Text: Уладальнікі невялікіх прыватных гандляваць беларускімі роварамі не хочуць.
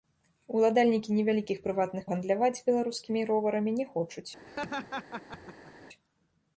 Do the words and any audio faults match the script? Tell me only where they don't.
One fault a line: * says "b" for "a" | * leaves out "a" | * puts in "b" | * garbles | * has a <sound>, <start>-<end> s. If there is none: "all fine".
* has a laugh, 4.5-5.7 s